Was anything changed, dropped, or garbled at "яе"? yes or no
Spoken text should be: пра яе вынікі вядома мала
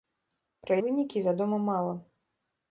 yes